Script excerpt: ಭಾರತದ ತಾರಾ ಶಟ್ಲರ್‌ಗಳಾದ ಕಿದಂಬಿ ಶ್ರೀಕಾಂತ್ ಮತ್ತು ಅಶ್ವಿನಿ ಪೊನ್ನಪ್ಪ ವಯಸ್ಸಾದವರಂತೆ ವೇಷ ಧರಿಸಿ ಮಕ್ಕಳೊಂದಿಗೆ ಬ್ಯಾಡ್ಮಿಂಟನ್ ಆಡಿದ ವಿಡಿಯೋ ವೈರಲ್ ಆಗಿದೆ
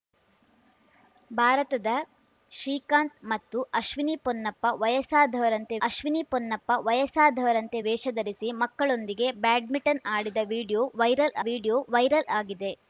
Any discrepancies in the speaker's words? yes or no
yes